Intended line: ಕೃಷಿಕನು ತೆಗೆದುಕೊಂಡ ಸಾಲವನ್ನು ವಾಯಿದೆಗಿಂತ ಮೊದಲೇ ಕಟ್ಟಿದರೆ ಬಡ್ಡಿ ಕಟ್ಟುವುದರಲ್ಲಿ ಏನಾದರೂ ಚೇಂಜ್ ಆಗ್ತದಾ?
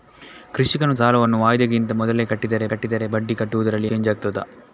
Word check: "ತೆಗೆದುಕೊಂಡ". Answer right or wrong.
wrong